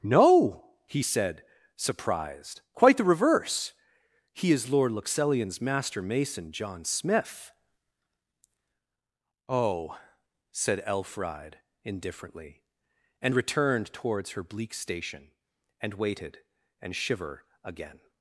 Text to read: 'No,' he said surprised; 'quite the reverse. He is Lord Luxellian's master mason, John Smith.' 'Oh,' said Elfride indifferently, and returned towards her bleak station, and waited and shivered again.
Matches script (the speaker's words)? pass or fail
fail